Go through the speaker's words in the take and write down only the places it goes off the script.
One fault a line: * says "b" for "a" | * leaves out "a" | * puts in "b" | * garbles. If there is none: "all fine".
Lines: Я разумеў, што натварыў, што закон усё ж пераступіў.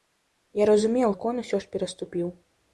* leaves out "што натварыў што"